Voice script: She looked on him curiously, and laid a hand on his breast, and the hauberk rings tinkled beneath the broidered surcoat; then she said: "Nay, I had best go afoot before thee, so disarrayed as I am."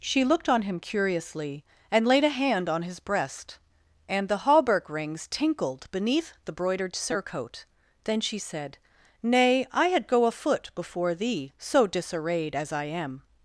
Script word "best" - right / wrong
wrong